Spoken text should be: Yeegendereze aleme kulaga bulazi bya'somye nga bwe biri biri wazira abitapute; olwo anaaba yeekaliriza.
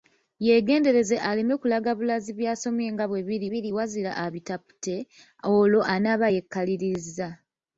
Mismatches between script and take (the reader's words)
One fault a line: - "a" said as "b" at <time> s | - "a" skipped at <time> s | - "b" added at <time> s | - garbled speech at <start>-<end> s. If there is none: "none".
none